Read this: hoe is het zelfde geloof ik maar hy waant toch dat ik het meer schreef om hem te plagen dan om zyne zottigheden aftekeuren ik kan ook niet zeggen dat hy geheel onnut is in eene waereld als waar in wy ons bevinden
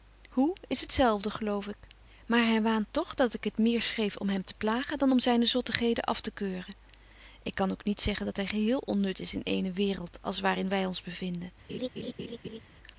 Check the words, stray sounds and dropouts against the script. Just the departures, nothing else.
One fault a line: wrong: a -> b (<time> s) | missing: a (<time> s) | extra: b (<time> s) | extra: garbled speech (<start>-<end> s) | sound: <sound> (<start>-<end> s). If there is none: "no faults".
sound: laugh (11.7-12.6 s)